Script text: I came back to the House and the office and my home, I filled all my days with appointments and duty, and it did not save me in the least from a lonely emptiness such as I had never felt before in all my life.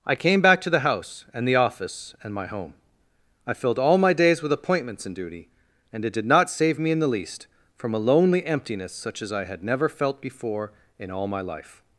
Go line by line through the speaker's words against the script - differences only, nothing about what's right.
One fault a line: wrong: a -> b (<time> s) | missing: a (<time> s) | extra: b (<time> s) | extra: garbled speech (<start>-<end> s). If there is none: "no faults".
no faults